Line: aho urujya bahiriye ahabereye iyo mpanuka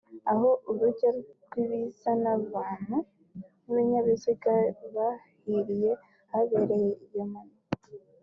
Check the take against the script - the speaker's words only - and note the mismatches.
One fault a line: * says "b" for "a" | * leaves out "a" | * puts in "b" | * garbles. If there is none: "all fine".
* puts in "n'uruza rw'abantu n'ibinyabiziga"